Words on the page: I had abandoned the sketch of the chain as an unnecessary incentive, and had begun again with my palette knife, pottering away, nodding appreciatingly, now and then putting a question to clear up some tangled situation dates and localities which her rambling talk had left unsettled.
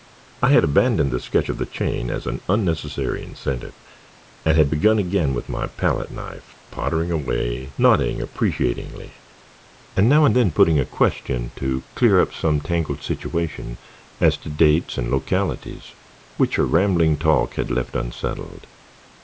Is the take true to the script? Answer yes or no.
no